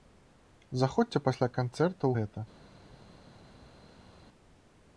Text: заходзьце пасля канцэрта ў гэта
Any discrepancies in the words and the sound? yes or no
no